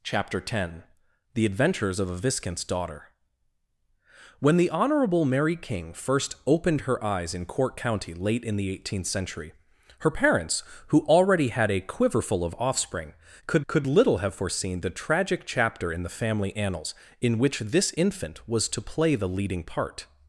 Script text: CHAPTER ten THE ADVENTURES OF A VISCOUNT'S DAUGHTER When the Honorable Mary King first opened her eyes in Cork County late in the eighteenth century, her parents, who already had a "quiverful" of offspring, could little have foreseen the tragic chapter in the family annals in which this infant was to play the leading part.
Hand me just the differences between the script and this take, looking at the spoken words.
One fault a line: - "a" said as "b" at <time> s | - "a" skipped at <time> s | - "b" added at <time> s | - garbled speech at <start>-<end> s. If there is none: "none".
- "could" added at 13.7 s